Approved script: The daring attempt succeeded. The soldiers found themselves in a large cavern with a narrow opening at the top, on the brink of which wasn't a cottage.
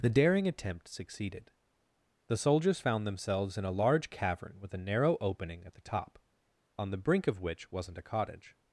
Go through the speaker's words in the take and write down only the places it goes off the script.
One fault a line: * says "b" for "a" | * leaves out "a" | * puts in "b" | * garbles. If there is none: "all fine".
all fine